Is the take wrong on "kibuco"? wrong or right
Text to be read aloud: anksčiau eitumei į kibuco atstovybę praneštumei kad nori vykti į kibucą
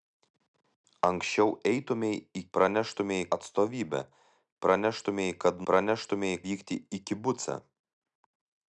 wrong